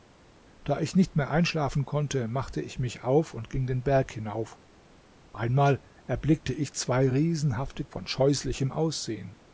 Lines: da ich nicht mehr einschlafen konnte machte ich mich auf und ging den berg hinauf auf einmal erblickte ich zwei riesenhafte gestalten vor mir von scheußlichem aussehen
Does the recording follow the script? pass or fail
fail